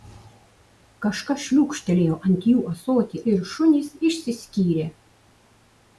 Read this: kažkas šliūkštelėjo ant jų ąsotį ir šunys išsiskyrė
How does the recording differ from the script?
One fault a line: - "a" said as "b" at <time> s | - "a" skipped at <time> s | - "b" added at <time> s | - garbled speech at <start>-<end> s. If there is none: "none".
none